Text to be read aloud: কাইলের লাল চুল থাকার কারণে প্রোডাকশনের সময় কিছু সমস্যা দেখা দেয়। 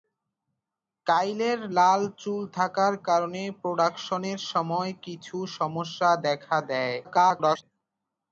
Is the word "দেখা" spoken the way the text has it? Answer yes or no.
yes